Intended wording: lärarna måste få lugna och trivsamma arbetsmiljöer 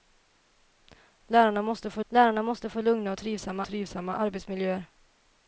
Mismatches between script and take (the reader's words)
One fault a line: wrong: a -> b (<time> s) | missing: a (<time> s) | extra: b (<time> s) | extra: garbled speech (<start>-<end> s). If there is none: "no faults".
extra: lärarna måste få (2.1 s)
extra: trivsamma (3.6 s)